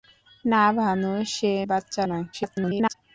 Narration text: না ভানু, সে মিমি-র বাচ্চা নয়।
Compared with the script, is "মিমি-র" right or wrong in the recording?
wrong